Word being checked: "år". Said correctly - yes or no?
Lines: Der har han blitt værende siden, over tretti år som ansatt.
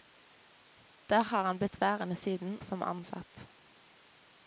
no